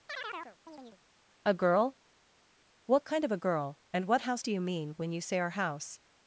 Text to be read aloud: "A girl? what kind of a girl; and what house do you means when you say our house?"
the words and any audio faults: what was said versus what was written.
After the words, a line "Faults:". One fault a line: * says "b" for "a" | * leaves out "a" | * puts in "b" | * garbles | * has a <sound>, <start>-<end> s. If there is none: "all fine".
"A girl? what kind of a girl; and what house do you mean when you say our house?"
Faults:
* has a chirp, 0.1-1.0 s
* says "mean" for "means"